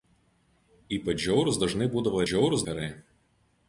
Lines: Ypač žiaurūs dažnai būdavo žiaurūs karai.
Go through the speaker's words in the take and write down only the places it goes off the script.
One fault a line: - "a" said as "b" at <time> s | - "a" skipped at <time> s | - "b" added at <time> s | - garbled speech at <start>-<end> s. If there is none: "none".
none